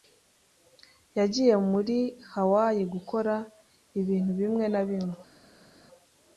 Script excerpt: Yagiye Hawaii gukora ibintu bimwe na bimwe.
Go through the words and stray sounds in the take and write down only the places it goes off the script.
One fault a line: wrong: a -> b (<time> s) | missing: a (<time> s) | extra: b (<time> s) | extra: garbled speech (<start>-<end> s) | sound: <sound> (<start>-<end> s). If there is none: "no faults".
extra: muri (1.7 s)